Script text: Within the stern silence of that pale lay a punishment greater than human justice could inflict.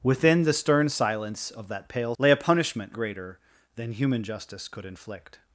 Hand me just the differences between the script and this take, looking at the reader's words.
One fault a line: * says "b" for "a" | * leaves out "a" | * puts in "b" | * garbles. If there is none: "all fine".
all fine